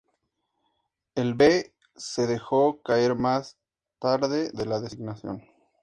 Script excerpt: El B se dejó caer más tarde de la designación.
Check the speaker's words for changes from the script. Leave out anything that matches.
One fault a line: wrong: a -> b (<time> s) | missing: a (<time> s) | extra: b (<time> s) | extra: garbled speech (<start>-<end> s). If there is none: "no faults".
no faults